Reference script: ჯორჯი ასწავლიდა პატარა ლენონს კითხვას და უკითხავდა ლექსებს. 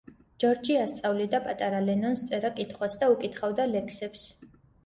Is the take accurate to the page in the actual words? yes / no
no